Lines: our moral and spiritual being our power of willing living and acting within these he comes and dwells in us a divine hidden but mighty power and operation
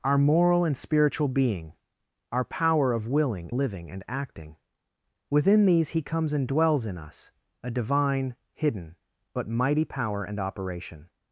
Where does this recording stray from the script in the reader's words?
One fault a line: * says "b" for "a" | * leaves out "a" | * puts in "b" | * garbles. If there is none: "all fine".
all fine